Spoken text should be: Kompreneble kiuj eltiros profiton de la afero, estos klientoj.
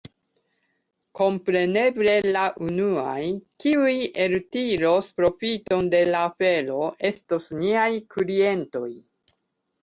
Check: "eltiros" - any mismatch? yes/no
no